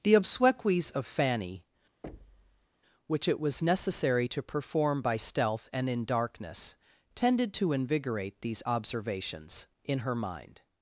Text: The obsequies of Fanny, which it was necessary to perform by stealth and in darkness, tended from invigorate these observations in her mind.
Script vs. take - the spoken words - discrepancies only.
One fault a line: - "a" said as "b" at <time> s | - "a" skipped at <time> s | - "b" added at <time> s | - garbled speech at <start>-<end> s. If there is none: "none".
- "from" said as "to" at 7.5 s